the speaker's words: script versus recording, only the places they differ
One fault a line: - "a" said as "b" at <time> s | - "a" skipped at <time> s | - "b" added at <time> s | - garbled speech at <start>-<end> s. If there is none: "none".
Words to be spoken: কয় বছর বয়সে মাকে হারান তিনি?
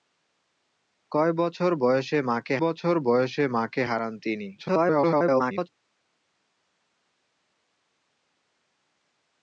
- "বছর বয়সে মাকে" added at 2.6 s
- garbled speech at 4.6-5.7 s